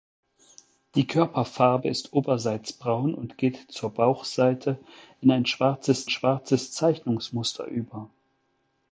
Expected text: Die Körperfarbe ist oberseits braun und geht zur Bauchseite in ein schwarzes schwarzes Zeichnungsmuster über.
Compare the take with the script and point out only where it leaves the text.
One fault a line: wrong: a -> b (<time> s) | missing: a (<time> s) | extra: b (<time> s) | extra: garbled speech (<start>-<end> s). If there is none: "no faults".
no faults